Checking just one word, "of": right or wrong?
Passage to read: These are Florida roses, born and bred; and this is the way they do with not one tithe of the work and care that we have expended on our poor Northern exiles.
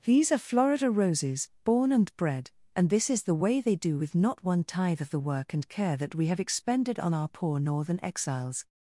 right